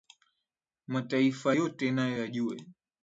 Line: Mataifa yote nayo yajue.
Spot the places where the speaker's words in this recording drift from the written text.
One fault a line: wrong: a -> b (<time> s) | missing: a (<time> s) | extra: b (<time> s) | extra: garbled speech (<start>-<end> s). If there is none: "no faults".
no faults